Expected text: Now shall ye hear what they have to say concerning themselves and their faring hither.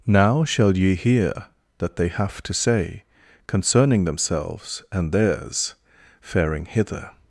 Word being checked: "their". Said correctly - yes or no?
no